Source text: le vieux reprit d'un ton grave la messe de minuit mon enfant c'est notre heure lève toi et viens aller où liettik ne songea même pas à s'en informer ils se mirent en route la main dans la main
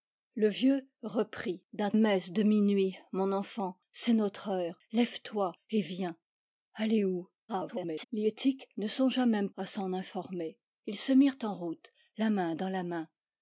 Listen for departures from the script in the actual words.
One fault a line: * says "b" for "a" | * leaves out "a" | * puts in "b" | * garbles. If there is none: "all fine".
* leaves out "ton grave la"
* garbles
* leaves out "pas"